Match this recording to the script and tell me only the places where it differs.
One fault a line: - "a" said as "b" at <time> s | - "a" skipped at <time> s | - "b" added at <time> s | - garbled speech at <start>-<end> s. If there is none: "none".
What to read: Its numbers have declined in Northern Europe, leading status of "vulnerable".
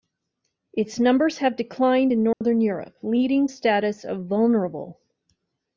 none